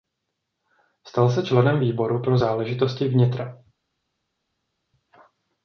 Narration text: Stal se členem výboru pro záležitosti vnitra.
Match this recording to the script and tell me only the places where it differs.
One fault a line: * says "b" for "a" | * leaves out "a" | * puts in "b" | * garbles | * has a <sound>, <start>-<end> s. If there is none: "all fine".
all fine